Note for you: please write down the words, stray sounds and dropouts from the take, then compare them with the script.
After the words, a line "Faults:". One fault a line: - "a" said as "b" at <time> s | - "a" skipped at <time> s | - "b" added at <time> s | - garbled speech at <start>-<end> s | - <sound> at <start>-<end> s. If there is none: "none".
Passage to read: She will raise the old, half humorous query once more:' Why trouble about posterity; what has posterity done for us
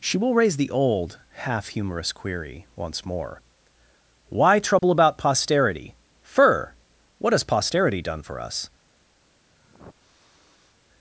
She will raise the old, half humorous query once more:' Why trouble about posterity; fur what has posterity done for us
Faults:
- dropout at 4.8-4.8 s
- "fur" added at 6.2 s
- sniff at 9.5-10.7 s